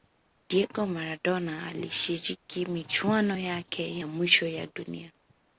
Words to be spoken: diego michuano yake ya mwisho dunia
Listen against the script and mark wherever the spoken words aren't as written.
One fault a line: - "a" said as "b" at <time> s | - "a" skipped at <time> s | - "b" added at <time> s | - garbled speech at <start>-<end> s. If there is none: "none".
- "maradona alishiriki" added at 0.8 s
- "ya" added at 4.5 s